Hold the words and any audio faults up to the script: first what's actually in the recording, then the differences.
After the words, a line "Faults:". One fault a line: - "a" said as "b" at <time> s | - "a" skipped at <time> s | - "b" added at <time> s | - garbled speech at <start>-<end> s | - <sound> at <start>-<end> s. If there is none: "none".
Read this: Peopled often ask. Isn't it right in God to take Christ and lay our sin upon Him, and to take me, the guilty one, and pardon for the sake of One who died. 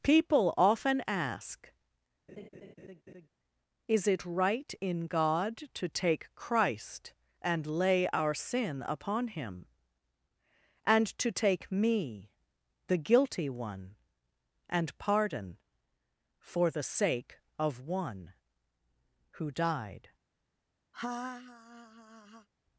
People often ask. Is it right in God to take Christ and lay our sin upon Him, and to take me, the guilty one, and pardon for the sake of One who died.
Faults:
- "Peopled" said as "People" at 0.0 s
- laugh at 2.3-3.3 s
- "Isn't" said as "Is" at 3.9 s
- laugh at 20.9-22.5 s